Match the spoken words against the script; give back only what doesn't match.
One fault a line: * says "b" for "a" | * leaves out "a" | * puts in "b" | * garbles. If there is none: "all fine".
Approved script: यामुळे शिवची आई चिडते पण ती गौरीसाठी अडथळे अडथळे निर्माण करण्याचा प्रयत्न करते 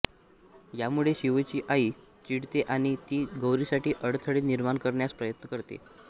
* says "आणि" for "पण"
* leaves out "अडथळे"